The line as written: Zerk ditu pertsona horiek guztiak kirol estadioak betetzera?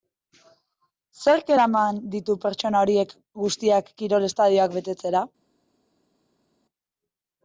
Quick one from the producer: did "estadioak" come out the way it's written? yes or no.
yes